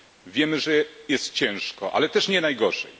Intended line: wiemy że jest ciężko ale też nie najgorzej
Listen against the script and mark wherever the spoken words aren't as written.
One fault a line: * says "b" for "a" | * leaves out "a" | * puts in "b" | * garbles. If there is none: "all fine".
all fine